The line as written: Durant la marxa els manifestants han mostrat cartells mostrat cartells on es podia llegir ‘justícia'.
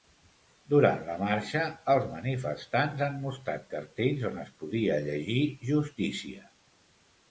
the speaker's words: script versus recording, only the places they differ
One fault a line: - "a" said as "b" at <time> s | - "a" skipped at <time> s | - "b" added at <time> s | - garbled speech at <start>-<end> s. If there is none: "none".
- "mostrat cartells" skipped at 4.3 s